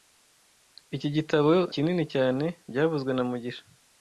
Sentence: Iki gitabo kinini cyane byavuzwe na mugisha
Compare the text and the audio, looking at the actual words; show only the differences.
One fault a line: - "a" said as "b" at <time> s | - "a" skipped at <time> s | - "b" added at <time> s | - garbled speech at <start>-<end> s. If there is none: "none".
none